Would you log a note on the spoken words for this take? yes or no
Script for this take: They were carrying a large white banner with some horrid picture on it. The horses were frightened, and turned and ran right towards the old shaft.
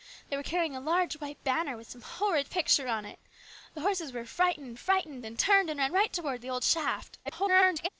yes